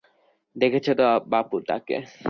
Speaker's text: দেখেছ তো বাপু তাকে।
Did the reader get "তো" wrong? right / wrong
right